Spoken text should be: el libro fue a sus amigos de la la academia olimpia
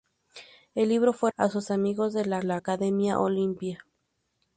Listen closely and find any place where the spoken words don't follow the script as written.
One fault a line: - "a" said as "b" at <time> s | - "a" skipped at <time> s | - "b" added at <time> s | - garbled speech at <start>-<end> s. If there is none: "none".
none